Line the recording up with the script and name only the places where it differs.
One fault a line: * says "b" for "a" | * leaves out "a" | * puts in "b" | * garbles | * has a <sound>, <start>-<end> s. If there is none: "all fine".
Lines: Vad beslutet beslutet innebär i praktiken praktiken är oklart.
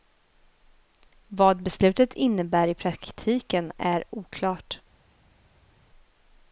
* leaves out "beslutet"
* leaves out "praktiken"